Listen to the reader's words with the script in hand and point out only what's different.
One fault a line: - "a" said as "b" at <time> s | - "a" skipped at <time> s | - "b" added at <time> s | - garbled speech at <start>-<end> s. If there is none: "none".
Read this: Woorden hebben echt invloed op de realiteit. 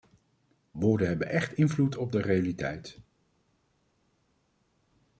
none